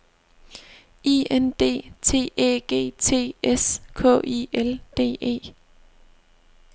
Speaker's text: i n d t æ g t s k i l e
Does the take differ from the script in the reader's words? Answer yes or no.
yes